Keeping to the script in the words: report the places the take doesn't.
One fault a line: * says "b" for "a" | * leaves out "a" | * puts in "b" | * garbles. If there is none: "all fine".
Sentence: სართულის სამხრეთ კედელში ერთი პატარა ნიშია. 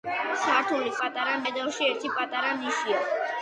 * says "პატარა" for "სამხრეთ"